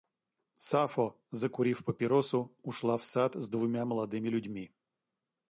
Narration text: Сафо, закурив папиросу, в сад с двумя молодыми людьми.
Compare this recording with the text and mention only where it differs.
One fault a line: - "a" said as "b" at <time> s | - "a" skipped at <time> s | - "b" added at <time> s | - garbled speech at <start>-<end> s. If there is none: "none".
- "ушла" added at 2.6 s